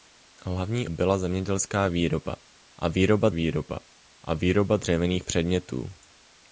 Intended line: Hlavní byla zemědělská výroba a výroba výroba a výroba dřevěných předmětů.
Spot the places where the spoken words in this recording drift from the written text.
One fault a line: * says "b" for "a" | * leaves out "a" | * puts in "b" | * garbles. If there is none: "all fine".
all fine